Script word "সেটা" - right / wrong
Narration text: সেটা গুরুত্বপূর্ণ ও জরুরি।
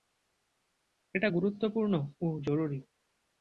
wrong